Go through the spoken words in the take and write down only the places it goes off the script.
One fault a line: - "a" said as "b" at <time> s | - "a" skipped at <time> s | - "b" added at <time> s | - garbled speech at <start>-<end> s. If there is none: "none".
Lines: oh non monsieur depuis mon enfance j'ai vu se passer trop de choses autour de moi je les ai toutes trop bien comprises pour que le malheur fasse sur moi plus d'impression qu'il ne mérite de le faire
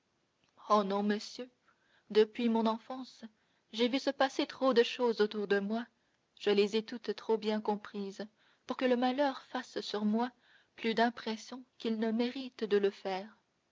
none